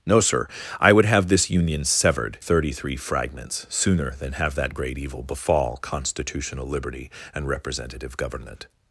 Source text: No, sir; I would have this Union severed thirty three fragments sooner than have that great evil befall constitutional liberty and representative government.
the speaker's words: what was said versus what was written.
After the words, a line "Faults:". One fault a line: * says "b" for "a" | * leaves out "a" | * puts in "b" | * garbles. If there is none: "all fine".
No, sir; I would have this Union severed thirty three fragments sooner than have that great evil befall constitutional liberty and representative government.
Faults:
all fine